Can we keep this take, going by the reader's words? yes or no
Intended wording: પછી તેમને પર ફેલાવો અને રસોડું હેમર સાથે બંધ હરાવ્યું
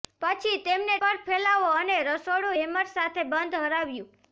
yes